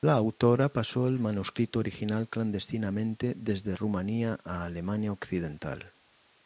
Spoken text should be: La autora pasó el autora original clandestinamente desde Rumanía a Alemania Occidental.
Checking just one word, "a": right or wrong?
right